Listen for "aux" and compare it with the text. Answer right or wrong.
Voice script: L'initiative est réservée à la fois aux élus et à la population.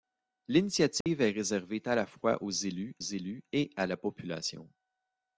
right